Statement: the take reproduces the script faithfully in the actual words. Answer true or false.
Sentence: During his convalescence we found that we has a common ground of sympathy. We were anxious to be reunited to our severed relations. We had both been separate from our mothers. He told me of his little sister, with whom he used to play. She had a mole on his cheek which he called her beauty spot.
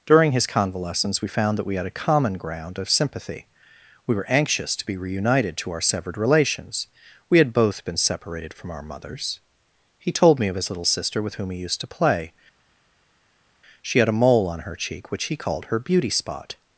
false